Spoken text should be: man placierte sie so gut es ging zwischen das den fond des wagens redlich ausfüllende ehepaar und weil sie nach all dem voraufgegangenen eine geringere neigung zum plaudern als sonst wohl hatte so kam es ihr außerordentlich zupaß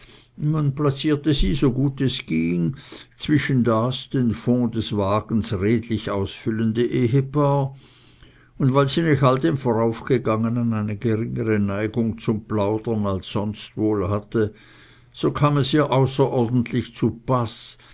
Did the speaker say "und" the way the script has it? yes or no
yes